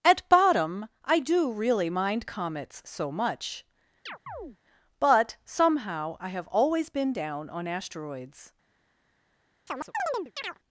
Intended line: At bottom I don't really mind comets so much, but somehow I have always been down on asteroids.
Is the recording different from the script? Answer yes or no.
yes